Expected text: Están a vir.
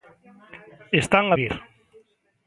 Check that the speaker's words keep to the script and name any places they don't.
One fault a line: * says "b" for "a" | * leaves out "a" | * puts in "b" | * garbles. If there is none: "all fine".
all fine